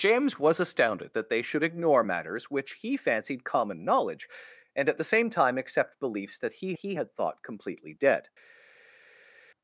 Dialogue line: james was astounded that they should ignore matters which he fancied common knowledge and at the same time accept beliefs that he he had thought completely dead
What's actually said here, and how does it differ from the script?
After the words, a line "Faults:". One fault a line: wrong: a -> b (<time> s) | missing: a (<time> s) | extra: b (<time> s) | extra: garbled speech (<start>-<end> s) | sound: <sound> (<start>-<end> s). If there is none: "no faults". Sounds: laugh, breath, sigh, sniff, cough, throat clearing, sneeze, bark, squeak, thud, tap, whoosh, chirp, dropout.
james was astounded that they should ignore matters which he fancied common knowledge and at the same time accept beliefs that he he had thought completely dead
Faults:
no faults